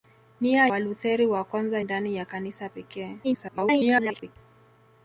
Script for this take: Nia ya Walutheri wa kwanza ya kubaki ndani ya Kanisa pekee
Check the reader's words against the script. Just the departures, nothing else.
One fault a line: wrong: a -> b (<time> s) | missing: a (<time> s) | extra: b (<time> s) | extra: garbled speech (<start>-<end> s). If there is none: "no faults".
missing: ya (0.7 s)
missing: ya kubaki (1.8 s)
extra: garbled speech (3.2-4.4 s)